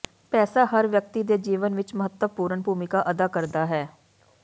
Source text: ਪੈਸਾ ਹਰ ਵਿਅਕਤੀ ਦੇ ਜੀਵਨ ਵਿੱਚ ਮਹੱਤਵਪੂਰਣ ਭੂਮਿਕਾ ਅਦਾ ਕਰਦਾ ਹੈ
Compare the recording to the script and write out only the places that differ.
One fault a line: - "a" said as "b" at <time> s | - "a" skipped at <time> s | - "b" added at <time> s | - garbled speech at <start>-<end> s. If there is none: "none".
none